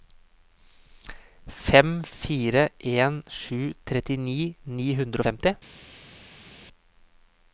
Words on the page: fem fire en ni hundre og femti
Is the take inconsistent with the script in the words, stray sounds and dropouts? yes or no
yes